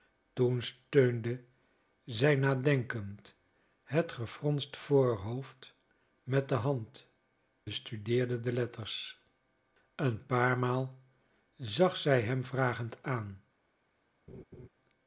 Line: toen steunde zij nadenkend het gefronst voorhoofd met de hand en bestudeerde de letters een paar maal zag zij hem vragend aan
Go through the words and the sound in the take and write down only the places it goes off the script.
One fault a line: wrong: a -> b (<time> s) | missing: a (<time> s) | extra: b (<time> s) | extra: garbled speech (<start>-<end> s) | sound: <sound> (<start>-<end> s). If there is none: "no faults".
missing: en (7.1 s)
sound: laugh (14.3-14.7 s)